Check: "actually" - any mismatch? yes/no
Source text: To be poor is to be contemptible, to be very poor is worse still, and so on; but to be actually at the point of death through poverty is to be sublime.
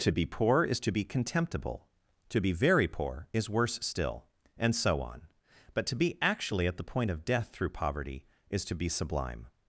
no